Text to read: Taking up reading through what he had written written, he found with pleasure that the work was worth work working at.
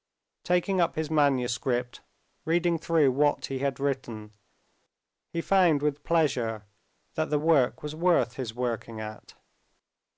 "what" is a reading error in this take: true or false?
false